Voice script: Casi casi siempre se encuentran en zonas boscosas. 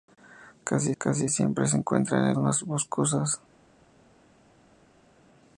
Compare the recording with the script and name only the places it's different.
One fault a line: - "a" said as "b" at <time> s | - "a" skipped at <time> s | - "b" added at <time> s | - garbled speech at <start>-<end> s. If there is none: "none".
none